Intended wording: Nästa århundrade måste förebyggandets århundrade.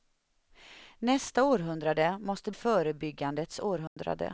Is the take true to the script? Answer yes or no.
yes